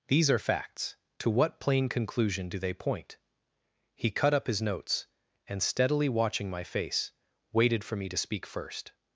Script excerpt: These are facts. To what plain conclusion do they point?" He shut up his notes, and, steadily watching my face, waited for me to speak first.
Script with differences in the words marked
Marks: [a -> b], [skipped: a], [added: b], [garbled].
These are facts. To what plain conclusion do they point?" He [shut -> cut] up his notes, and, steadily watching my face, waited for me to speak first.